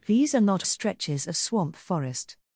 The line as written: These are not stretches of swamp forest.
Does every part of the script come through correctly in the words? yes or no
yes